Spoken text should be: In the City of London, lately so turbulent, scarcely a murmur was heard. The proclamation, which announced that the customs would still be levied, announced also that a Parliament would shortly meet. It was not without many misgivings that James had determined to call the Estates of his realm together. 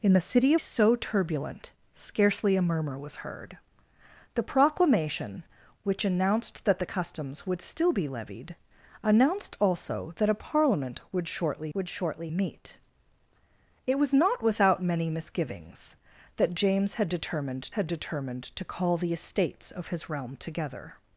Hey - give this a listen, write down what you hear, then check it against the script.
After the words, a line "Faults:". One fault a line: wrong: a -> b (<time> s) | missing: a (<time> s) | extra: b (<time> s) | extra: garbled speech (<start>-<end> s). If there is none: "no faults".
In the City so turbulent, scarcely a murmur was heard. The proclamation, which announced that the customs would still be levied, announced also that a Parliament would shortly would shortly meet. It was not without many misgivings that James had determined had determined to call the Estates of his realm together.
Faults:
missing: of London lately (0.6 s)
extra: would shortly (11.7 s)
extra: had determined (17.7 s)